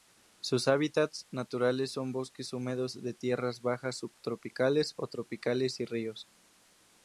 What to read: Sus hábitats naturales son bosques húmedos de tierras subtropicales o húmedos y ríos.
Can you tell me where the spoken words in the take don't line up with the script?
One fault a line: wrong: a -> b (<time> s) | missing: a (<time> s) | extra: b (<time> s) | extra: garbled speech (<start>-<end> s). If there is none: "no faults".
extra: bajas (3.6 s)
wrong: húmedos -> tropicales (5.0 s)